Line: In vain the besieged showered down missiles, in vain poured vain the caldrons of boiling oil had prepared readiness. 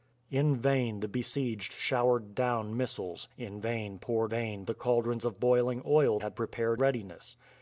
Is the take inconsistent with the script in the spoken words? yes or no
no